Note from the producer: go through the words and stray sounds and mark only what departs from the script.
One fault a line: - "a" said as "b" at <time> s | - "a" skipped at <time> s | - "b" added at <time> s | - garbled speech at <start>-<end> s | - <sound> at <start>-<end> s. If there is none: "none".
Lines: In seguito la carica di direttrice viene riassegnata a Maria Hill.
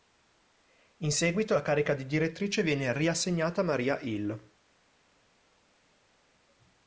none